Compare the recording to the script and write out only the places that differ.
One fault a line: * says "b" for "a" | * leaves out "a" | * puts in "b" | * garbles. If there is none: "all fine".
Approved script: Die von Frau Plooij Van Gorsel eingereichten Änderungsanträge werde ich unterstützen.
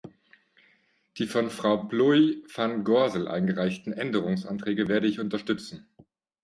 all fine